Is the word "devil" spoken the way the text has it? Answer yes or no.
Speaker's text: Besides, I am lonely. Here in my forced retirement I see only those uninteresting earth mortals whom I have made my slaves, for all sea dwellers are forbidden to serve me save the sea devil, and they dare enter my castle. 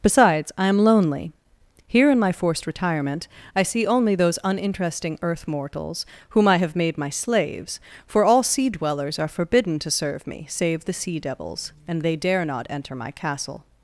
no